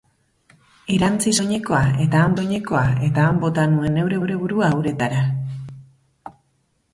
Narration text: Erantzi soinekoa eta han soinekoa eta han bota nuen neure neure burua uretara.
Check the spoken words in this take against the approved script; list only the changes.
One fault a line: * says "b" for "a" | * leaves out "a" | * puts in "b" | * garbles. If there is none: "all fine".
all fine